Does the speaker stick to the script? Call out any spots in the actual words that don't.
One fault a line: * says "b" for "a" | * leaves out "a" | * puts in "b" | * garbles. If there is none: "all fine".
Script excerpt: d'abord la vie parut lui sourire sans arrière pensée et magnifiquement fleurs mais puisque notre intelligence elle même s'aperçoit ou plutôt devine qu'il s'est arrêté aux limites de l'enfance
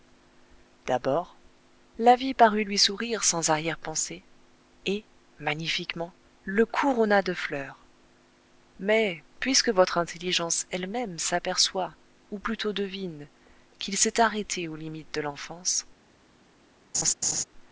* puts in "le couronna de"
* says "votre" for "notre"